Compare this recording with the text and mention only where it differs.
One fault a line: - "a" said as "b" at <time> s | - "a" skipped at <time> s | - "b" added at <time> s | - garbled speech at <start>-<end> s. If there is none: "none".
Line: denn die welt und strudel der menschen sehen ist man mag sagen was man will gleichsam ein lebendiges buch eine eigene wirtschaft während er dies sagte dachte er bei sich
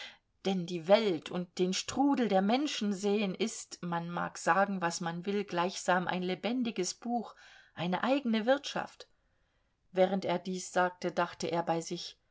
- "den" added at 1.6 s